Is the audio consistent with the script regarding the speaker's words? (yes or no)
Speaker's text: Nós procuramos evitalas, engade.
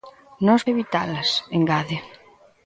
no